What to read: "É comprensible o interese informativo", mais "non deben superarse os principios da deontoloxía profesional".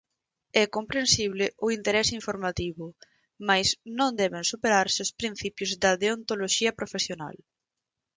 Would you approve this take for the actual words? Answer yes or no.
yes